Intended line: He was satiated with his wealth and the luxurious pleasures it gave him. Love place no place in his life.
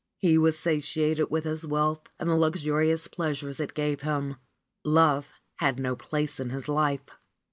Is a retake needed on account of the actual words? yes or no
yes